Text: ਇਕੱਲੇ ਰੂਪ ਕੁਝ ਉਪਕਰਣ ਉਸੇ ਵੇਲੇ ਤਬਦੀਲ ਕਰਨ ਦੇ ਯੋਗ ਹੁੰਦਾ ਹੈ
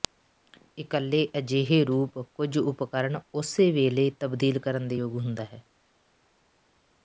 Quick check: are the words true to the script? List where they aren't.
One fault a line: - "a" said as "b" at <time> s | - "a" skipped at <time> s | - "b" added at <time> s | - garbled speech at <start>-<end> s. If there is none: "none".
- "ਅਜਿਹੇ" added at 1.4 s